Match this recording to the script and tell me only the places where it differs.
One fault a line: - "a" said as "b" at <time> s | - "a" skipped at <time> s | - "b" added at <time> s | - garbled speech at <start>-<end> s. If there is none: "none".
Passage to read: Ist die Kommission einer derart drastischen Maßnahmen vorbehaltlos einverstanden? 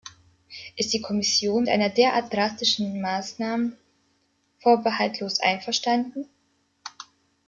none